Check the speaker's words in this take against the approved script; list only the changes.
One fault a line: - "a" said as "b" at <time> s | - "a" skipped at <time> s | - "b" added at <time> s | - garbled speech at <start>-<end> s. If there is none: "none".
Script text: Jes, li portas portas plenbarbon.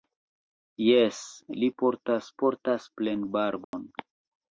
none